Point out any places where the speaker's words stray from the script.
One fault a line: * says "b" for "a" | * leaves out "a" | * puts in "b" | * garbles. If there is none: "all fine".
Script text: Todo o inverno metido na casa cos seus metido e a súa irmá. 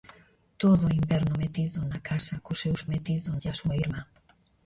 all fine